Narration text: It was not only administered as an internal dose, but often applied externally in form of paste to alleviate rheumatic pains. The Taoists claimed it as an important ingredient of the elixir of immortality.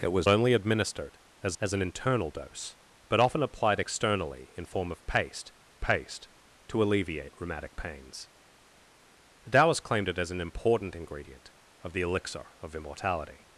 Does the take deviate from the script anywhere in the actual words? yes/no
yes